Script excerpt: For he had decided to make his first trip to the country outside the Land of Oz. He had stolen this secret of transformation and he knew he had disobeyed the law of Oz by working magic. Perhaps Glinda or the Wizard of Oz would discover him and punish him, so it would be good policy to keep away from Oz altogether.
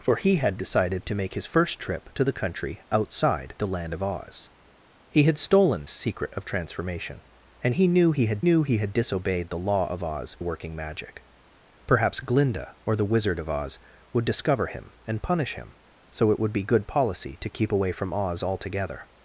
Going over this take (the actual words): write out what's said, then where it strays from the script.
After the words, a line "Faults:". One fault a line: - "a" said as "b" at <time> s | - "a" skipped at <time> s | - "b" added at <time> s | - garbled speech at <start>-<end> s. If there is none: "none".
For he had decided to make his first trip to the country outside the Land of Oz. He had stolen secret of transformation and he knew he had knew he had disobeyed the law of Oz working magic. Perhaps Glinda or the Wizard of Oz would discover him and punish him, so it would be good policy to keep away from Oz altogether.
Faults:
- "this" skipped at 5.8 s
- "knew he had" added at 8.4 s
- "by" skipped at 10.4 s